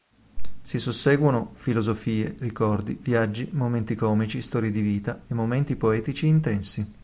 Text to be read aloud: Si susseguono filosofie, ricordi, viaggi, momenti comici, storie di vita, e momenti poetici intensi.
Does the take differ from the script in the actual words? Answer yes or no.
no